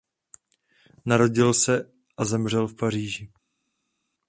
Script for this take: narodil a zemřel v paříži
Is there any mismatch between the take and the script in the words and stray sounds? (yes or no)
yes